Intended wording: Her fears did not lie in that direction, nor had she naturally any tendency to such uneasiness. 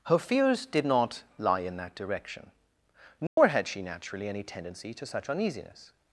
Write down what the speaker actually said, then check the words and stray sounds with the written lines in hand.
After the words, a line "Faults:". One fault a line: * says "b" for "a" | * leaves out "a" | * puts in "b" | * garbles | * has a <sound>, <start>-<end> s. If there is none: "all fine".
Her fears did not lie in that direction, nor had she naturally any tendency to such uneasiness.
Faults:
* has a dropout, 3.3-3.4 s